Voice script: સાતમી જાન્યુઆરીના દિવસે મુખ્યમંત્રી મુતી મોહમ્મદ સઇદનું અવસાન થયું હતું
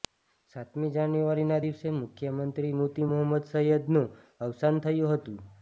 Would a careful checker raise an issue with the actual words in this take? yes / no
no